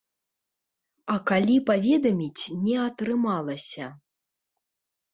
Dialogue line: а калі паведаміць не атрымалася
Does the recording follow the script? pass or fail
pass